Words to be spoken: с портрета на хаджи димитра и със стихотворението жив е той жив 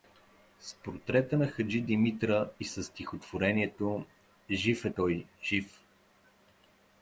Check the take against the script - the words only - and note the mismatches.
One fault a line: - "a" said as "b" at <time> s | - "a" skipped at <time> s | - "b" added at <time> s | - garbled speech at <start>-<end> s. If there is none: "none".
none